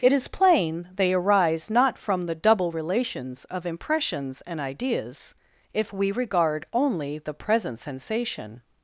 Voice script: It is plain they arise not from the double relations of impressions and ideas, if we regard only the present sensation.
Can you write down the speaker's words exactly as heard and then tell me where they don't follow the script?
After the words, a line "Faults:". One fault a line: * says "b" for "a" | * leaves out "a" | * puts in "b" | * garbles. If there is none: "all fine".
It is plain they arise not from the double relations of impressions and ideas, if we regard only the present sensation.
Faults:
all fine